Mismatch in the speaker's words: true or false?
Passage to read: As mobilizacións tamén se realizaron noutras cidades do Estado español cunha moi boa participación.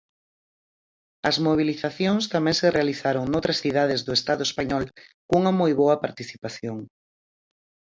false